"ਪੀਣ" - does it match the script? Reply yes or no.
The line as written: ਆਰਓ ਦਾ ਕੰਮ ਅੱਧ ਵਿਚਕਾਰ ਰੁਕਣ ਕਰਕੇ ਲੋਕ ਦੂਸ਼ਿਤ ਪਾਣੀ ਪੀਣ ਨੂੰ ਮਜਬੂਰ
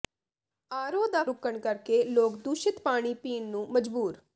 yes